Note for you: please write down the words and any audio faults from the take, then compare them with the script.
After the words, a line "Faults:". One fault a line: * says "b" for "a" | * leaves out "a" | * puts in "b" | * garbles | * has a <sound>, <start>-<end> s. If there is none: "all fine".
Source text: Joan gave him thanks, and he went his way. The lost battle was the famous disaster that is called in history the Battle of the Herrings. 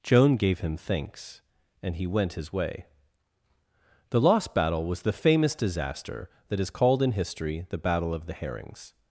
Joan gave him thanks, and he went his way. The lost battle was the famous disaster that is called in history the Battle of the Herrings.
Faults:
all fine